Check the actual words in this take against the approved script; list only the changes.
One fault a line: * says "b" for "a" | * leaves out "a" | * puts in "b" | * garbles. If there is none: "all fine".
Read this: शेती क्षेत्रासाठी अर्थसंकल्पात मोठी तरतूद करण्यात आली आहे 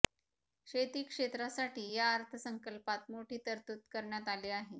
* puts in "या"